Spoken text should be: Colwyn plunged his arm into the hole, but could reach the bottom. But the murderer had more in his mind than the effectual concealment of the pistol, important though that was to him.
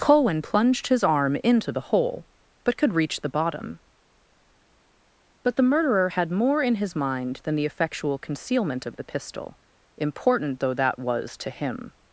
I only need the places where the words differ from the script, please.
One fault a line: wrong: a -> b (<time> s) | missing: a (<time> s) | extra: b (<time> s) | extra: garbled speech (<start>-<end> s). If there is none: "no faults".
no faults